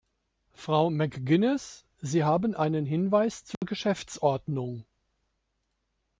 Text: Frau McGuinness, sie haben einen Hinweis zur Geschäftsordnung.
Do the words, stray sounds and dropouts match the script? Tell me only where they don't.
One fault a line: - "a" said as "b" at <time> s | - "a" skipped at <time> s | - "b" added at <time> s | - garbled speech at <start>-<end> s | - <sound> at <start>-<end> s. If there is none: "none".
- dropout at 3.5-3.6 s